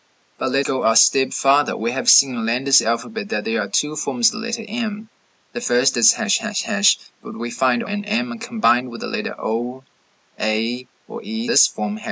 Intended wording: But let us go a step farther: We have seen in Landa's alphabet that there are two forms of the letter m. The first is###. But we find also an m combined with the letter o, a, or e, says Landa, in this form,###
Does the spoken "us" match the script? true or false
false